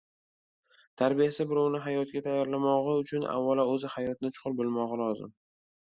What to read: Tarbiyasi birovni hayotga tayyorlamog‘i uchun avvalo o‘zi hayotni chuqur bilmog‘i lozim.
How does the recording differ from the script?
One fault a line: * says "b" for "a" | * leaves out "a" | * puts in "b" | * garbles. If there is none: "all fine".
all fine